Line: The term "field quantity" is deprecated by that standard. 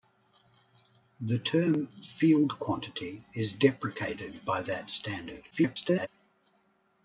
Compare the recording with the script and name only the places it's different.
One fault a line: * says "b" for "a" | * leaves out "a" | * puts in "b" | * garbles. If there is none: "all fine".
* garbles